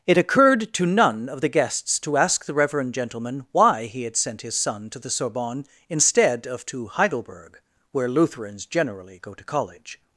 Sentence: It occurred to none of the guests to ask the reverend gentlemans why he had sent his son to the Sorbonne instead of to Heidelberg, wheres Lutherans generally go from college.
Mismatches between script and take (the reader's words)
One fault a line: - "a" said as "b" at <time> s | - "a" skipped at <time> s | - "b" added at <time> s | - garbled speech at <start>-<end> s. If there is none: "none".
- "gentlemans" said as "gentleman" at 2.9 s
- "wheres" said as "where" at 7.9 s
- "from" said as "to" at 9.3 s